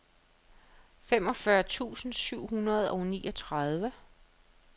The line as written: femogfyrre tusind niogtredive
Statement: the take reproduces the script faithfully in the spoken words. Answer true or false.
false